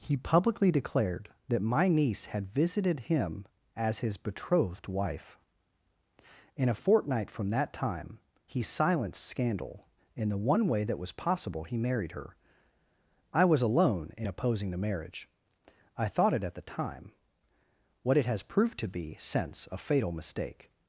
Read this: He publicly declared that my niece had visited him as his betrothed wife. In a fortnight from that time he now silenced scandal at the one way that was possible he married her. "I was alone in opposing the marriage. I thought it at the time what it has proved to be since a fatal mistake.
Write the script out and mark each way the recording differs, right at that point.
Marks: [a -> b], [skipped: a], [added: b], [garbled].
He publicly declared that my niece had visited him as his betrothed wife. In a fortnight from that time he [skipped: now] silenced scandal [at -> in] the one way that was possible he married her. "I was alone in opposing the marriage. I thought it at the time what it has proved to be since a fatal mistake.